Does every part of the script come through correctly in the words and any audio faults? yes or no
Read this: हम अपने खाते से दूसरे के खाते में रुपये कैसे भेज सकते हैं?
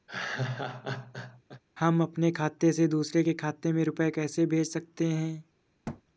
no